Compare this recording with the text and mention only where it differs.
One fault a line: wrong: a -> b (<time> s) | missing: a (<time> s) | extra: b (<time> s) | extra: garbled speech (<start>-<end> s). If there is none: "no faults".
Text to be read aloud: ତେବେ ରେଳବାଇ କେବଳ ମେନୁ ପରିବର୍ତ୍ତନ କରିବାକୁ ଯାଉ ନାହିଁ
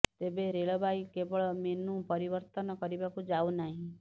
no faults